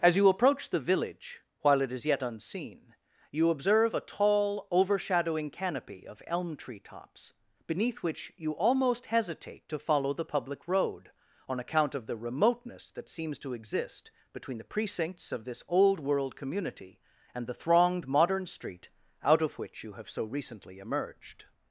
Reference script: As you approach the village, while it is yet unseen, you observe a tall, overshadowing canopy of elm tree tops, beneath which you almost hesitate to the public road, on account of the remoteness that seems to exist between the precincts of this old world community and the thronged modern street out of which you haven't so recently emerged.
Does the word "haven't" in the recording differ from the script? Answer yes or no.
yes